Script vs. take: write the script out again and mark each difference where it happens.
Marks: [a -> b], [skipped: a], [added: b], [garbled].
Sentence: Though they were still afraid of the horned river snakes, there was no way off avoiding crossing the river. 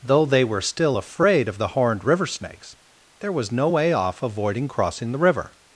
Though they were still afraid of the horned river snakes, there was no way off avoiding crossing the river.